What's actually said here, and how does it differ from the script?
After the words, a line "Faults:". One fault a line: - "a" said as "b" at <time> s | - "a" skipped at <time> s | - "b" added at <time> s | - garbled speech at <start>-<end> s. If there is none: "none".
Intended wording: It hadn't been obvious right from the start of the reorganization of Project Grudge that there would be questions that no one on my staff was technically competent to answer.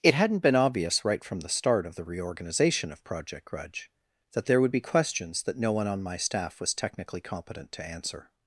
It hadn't been obvious right from the start of the reorganization of Project Grudge that there would be questions that no one on my staff was technically competent to answer.
Faults:
none